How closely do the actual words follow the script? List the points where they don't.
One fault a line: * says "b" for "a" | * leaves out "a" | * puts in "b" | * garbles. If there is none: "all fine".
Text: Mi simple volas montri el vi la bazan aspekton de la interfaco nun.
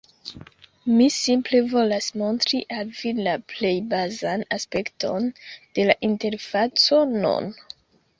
* says "al" for "el"
* puts in "plej"